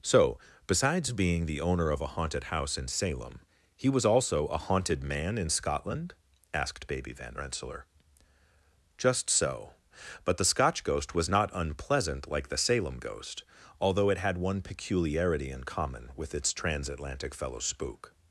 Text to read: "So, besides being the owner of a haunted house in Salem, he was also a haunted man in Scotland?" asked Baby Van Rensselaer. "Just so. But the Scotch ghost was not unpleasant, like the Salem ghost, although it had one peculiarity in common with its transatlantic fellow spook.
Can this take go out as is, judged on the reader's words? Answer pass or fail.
pass